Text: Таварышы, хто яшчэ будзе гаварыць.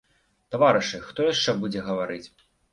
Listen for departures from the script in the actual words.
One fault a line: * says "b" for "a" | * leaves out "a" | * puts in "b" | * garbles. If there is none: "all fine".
all fine